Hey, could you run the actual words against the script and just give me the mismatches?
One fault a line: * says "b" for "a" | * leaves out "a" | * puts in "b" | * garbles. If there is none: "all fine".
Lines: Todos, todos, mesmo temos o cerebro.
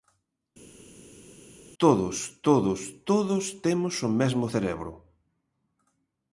* says "todos" for "mesmo"
* puts in "mesmo"